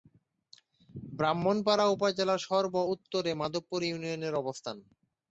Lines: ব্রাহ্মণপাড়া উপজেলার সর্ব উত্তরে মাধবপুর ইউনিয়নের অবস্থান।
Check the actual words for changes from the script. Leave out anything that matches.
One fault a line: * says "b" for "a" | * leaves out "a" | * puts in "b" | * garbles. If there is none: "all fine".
all fine